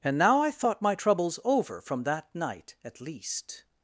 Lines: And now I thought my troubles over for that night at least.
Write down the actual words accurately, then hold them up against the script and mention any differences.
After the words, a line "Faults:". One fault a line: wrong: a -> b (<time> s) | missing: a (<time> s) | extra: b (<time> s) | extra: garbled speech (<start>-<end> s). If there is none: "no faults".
And now I thought my troubles over from that night at least.
Faults:
wrong: for -> from (1.8 s)